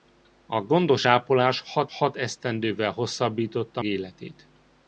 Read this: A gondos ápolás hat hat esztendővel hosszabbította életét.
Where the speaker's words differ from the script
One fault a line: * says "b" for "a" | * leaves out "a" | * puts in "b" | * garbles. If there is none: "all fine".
all fine